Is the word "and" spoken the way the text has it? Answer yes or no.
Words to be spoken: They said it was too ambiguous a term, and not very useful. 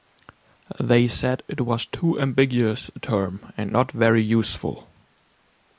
yes